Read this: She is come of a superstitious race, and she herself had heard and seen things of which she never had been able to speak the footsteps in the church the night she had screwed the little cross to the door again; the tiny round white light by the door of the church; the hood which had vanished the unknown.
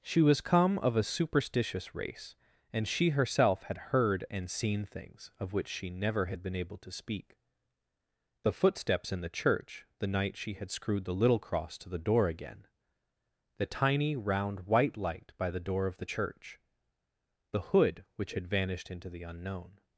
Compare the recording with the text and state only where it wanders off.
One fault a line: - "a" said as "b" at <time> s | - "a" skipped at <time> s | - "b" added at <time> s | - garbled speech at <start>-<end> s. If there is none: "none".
- "is" said as "was" at 0.2 s
- "into" added at 18.9 s